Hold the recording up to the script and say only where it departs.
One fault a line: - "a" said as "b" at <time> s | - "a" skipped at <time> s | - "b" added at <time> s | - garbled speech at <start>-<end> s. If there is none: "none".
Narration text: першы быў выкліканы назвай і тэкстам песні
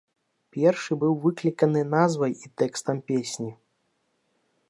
none